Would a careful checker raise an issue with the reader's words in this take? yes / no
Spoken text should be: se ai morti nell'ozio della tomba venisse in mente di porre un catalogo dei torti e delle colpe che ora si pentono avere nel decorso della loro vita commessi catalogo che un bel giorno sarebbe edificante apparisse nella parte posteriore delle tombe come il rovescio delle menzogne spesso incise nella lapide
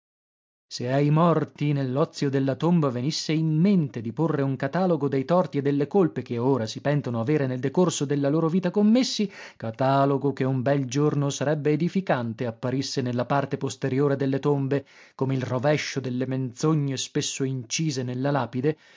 no